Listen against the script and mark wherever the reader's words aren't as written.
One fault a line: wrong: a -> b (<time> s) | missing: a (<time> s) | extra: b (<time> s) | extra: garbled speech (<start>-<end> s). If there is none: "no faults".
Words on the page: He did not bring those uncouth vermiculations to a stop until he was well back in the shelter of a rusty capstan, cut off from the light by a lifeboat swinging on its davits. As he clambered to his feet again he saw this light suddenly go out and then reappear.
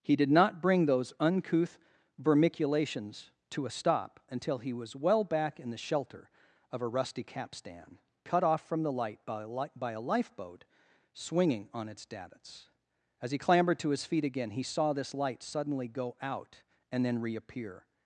extra: li by a (9.5 s)